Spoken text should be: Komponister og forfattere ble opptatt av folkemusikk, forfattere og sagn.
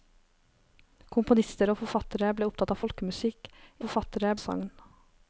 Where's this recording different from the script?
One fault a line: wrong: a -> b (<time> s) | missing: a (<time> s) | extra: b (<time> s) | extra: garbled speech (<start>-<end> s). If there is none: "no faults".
no faults